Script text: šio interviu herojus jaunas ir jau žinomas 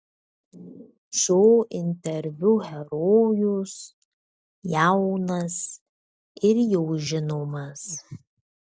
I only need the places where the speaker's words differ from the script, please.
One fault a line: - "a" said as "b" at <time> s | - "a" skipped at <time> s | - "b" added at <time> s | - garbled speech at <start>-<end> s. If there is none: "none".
none